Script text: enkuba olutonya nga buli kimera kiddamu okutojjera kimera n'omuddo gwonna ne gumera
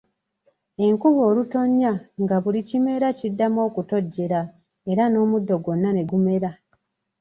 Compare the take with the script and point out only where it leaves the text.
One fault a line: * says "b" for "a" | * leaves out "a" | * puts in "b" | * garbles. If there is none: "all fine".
* says "era" for "kimera"